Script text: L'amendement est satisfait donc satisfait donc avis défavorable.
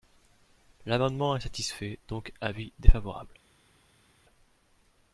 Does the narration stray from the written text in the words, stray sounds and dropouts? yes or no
yes